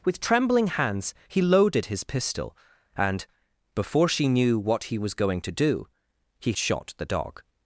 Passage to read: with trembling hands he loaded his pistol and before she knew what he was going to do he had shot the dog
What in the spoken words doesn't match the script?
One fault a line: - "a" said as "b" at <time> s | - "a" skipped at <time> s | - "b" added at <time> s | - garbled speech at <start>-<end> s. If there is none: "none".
- "had" skipped at 6.5 s